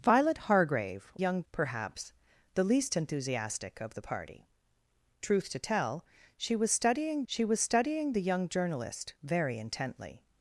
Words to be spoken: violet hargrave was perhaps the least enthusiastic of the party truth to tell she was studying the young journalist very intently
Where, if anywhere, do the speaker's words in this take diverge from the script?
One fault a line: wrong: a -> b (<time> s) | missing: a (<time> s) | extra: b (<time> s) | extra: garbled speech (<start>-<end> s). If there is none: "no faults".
wrong: was -> young (1.2 s)
extra: she was studying (7.3 s)